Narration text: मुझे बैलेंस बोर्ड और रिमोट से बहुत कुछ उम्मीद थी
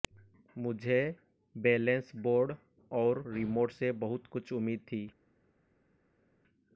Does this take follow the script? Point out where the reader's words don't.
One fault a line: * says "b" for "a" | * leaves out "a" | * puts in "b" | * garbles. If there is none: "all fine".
all fine